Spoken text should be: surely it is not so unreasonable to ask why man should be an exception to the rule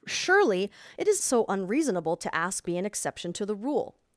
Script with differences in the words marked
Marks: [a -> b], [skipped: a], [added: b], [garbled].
surely it is [skipped: not] so unreasonable to ask [skipped: why man should] be an exception to the rule